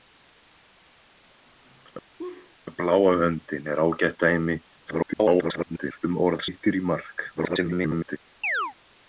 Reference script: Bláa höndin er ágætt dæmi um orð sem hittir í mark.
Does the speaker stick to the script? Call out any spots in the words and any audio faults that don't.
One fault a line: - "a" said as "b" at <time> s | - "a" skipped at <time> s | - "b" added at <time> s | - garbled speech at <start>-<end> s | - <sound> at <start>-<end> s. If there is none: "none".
- laugh at 2.2-2.5 s
- garbled speech at 4.9-6.0 s
- "sem" skipped at 6.5 s
- garbled speech at 7.4-8.2 s
- chirp at 8.4-8.7 s